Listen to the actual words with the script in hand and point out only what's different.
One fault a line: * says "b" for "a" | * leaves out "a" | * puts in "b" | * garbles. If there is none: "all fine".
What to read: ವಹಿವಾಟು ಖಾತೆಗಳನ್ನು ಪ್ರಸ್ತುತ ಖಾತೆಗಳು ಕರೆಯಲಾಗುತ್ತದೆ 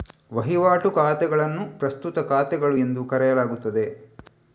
* puts in "ಎಂದು"